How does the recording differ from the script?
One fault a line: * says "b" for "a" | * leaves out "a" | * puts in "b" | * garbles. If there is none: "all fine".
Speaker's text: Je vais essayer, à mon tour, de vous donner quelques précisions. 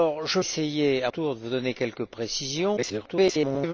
* leaves out "vais"
* leaves out "mon"
* garbles